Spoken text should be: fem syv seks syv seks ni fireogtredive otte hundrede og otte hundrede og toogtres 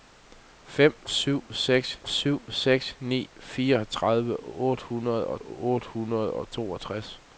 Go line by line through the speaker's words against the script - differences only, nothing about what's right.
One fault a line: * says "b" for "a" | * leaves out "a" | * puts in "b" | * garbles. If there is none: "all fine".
all fine